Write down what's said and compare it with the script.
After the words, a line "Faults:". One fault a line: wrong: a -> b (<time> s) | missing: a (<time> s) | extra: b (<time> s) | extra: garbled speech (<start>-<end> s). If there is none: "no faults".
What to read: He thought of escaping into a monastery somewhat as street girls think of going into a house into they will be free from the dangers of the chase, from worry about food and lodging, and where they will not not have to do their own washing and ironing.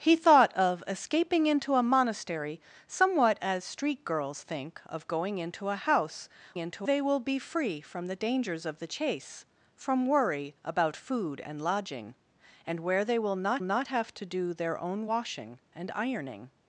He thought of escaping into a monastery somewhat as street girls think of going into a house into they will be free from the dangers of the chase, from worry about food and lodging, and where they will not not have to do their own washing and ironing.
Faults:
no faults